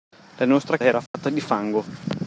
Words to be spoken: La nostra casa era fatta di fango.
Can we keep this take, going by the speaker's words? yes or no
no